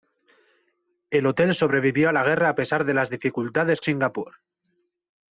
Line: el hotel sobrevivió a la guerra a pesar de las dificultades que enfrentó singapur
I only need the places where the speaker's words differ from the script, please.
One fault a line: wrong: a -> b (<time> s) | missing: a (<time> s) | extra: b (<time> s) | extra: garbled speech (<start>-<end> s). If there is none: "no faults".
missing: que enfrentó (3.8 s)